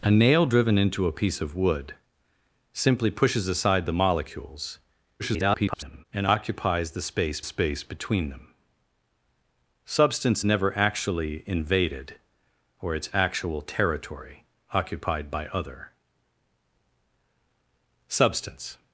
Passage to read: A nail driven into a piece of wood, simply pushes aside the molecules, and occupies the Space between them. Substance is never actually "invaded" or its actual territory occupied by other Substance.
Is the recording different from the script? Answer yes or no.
yes